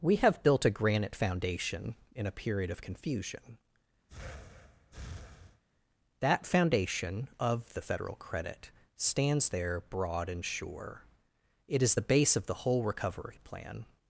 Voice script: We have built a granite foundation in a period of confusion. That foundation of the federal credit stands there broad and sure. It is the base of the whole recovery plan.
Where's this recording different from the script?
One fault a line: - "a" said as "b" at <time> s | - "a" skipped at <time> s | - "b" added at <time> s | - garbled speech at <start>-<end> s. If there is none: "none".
none